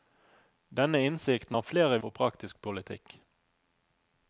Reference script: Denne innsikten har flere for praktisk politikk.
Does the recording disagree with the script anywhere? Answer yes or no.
no